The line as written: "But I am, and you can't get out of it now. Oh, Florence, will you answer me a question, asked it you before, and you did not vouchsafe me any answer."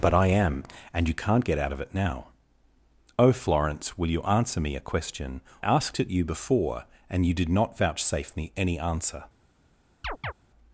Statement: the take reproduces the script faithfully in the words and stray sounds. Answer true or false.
false